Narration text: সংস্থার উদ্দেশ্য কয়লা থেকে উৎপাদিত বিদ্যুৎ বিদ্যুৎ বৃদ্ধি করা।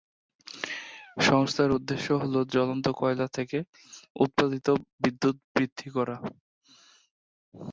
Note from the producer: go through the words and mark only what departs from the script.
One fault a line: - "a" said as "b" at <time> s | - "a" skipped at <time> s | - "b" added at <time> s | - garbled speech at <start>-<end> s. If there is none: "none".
- "হল জ্বলন্ত" added at 2.2 s
- "বিদ্যুৎ" skipped at 5.4 s